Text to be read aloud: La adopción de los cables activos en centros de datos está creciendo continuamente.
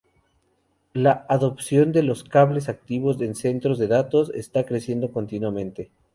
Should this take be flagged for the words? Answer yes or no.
no